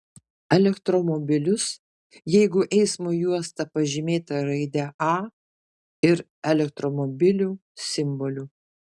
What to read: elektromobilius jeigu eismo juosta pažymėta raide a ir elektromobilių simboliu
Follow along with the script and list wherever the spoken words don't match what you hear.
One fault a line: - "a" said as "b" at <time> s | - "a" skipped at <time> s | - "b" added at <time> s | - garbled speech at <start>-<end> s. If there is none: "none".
none